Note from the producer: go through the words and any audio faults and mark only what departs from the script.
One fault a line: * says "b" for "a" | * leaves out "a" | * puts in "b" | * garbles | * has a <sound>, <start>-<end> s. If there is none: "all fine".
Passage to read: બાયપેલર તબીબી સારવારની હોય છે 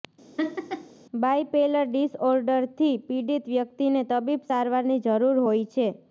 * has a laugh, 0.4-1.0 s
* puts in "ડિસઓર્ડરથી પીડિત વ્યક્તિને"
* puts in "જરૂર"